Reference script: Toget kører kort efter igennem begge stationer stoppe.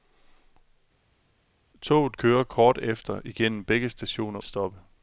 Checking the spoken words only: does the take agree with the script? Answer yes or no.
yes